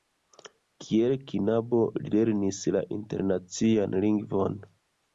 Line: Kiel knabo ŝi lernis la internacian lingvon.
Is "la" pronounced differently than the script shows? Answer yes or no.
no